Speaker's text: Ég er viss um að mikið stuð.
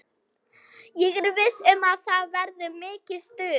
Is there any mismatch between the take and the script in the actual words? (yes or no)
yes